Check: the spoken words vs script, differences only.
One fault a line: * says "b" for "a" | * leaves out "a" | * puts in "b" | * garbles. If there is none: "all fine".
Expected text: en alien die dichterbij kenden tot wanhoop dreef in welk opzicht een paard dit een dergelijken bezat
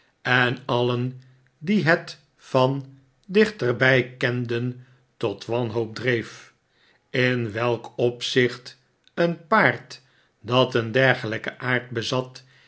* puts in "het van"
* says "dat" for "dit"
* puts in "aard"